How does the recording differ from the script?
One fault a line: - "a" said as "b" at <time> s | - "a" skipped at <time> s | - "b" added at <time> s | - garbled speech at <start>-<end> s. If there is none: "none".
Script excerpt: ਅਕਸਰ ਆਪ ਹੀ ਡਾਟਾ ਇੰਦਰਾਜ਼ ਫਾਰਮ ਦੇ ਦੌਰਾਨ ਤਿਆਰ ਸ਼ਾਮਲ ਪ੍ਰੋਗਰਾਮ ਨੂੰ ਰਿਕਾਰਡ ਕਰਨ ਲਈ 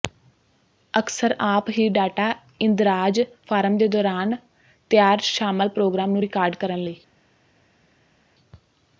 none